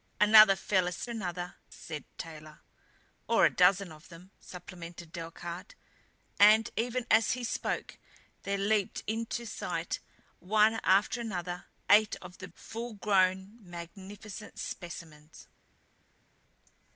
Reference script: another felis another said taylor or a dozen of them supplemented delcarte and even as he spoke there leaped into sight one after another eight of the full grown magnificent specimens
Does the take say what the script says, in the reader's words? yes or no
yes